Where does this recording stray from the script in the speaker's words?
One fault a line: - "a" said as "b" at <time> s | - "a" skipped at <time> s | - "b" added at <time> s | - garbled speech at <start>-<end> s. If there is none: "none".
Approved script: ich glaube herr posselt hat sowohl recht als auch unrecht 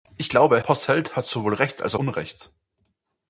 - "herr" skipped at 0.6 s
- "auch" skipped at 1.9 s